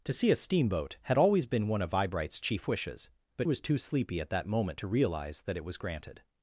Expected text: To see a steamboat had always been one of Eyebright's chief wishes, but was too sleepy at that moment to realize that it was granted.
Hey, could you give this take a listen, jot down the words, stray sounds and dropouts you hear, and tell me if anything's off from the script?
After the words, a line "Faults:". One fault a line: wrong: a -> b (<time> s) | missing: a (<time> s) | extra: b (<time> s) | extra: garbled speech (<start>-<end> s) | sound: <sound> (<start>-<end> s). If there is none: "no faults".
To see a steamboat had always been one of Eyebright's chief wishes, but was too sleepy at that moment to realize that it was granted.
Faults:
no faults